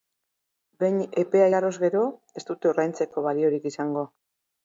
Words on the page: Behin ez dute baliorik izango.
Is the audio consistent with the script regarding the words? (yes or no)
no